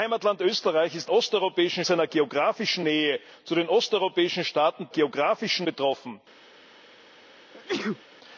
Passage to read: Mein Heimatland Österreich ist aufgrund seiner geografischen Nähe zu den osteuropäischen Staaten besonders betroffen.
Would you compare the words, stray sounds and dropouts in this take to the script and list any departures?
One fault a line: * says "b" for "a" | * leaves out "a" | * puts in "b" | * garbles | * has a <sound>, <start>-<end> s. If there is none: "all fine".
* says "osteuropäischen" for "aufgrund"
* says "geografischen" for "besonders"
* has a sneeze, 7.5-8.0 s